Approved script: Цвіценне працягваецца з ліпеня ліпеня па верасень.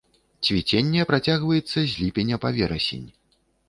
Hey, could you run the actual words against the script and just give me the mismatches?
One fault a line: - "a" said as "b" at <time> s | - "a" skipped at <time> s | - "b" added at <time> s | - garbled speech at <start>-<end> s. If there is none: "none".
- "ліпеня" skipped at 2.4 s